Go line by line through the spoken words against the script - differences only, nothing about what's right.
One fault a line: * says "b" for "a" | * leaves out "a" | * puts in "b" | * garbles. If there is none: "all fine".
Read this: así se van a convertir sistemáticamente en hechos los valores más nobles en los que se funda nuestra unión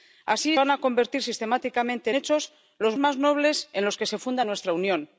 * leaves out "se"
* leaves out "en"
* leaves out "valores"